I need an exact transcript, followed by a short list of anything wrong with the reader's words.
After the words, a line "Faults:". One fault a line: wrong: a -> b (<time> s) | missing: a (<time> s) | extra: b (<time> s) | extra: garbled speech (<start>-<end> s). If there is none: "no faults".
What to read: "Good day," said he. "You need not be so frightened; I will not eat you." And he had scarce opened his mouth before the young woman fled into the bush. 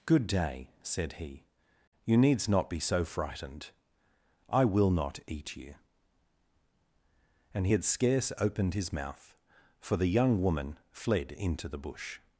"Good day," said he. "You needs not be so frightened; I will not eat you." And he had scarce opened his mouth for the young woman fled into the bush.
Faults:
wrong: need -> needs (2.2 s)
wrong: before -> for (9.8 s)